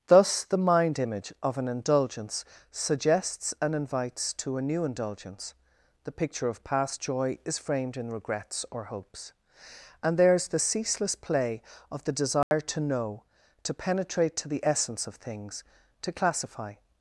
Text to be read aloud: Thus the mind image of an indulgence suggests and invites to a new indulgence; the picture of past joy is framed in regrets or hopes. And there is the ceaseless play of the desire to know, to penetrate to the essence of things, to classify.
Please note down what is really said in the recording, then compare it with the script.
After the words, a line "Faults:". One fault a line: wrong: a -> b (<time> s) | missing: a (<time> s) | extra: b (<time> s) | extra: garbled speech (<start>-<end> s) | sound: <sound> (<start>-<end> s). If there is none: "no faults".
Thus the mind image of an indulgence suggests and invites to a new indulgence; the picture of past joy is framed in regrets or hopes. And there is the ceaseless play of the desire to know, to penetrate to the essence of things, to classify.
Faults:
sound: dropout (12.4-12.5 s)